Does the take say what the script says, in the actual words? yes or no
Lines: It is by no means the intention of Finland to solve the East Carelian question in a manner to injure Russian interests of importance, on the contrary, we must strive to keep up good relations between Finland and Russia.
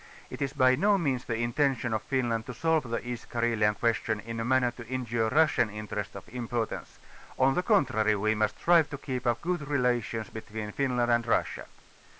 yes